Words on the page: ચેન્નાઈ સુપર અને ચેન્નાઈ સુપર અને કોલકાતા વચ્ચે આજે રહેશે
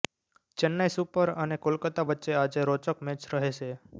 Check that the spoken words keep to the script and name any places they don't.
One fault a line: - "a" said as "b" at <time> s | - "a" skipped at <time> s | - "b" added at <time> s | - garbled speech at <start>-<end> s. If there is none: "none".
- "ચેન્નાઈ સુપર અને" skipped at 1.6 s
- "રોચક મેચ" added at 2.7 s